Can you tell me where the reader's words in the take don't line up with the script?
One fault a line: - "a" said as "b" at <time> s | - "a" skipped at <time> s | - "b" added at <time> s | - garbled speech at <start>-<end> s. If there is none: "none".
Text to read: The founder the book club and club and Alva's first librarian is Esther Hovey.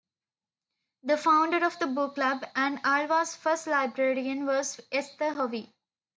- "of" added at 1.6 s
- "club and" skipped at 2.8 s
- "is" said as "was" at 4.5 s